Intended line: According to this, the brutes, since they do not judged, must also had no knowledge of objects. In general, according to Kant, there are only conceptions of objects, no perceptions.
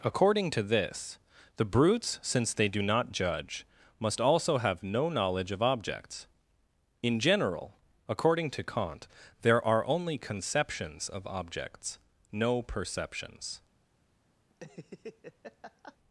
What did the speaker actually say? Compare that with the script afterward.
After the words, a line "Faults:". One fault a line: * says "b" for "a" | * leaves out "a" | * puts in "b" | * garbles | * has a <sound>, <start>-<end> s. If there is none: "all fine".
According to this, the brutes, since they do not judge, must also have no knowledge of objects. In general, according to Kant, there are only conceptions of objects, no perceptions.
Faults:
* says "judge" for "judged"
* says "have" for "had"
* has a laugh, 14.5-16.0 s